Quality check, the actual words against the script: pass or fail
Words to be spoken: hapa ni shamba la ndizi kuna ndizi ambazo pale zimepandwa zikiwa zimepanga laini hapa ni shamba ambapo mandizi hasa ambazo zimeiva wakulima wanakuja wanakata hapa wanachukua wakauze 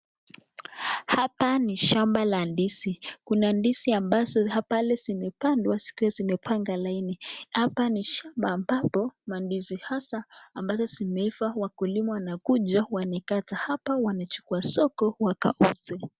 fail